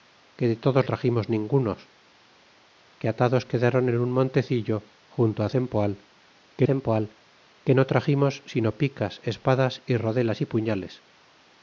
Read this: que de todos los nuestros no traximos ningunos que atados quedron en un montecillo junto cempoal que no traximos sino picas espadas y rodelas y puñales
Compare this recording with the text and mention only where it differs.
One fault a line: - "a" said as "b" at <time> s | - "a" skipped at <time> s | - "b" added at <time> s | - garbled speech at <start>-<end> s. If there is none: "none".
- "los nuestros no" skipped at 0.9 s
- "cempoal que" added at 6.7 s